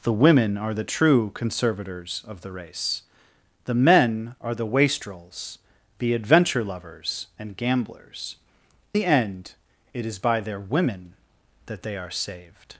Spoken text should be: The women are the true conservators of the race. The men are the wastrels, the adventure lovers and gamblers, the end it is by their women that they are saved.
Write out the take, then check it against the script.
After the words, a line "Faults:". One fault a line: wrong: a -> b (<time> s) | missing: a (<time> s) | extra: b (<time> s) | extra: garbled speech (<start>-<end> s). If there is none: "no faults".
The women are the true conservators of the race. The men are the wastrels, the adventure lovers and gamblers, the end it is by their women that they are saved.
Faults:
no faults